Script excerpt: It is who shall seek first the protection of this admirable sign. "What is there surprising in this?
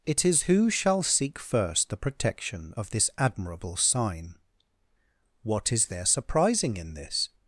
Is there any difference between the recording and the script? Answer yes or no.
no